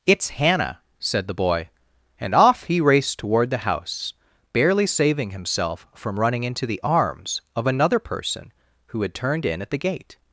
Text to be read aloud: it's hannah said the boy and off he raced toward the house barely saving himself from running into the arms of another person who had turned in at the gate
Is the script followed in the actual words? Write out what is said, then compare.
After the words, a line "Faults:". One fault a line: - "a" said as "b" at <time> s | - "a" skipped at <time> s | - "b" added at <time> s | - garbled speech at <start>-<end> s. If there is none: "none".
it's hannah said the boy and off he raced toward the house barely saving himself from running into the arms of another person who had turned in at the gate
Faults:
none